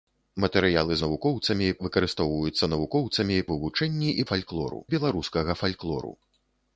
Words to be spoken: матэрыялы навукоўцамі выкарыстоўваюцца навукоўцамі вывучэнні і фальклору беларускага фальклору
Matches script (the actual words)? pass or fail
pass